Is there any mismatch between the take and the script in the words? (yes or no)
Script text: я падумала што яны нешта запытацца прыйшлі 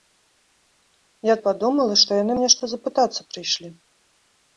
no